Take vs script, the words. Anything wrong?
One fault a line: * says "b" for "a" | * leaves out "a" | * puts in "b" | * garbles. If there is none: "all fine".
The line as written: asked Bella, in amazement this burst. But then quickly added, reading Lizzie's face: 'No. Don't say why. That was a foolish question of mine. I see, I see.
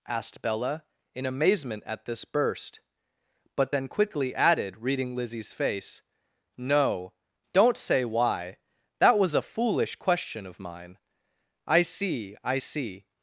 * puts in "at"